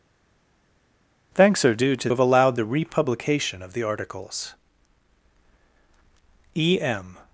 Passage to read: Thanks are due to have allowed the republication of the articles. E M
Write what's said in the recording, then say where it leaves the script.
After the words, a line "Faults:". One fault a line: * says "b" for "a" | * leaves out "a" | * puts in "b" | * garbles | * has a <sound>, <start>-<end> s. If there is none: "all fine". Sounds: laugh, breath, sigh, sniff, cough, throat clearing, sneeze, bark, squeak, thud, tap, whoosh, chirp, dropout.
Thanks are due to have allowed the republication of the articles. E M
Faults:
all fine